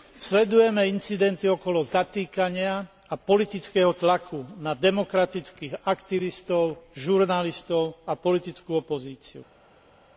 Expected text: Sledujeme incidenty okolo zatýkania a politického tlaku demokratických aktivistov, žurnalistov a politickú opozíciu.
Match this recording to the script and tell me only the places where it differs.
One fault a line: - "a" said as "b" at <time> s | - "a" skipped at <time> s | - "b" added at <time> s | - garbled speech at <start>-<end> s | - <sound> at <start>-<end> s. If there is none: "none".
- "na" added at 4.6 s